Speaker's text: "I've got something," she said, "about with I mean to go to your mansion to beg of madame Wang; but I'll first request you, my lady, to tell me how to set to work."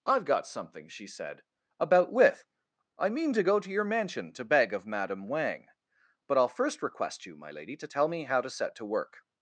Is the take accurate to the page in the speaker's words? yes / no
yes